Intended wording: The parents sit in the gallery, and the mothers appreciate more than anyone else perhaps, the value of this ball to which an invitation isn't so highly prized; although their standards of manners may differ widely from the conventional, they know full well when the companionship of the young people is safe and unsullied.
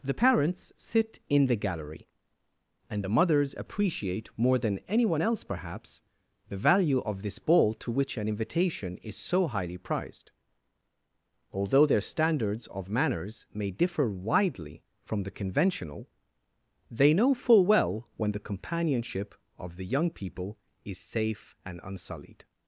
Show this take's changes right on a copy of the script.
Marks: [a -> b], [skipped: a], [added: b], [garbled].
The parents sit in the gallery, and the mothers appreciate more than anyone else perhaps, the value of this ball to which an invitation [isn't -> is] so highly prized; although their standards of manners may differ widely from the conventional, they know full well when the companionship of the young people is safe and unsullied.